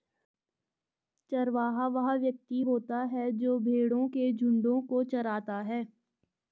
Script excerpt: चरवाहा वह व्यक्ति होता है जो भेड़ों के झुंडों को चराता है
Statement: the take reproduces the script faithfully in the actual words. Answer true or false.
true